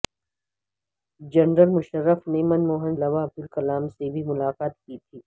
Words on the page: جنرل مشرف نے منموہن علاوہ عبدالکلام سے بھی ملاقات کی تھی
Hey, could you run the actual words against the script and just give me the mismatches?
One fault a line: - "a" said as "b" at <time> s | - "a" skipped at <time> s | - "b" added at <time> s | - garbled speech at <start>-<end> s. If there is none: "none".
none